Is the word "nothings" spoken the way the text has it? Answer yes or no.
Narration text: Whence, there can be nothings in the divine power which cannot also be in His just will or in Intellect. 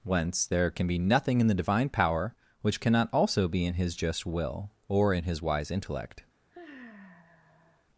no